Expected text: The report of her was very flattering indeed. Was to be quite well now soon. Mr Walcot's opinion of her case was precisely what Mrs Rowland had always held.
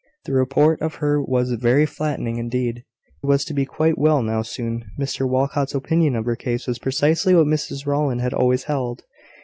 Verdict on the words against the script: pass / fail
pass